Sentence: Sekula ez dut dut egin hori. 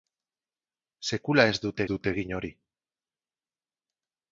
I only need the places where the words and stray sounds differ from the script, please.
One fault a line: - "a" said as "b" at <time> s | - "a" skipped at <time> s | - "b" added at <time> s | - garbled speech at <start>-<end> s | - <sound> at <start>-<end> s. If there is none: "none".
none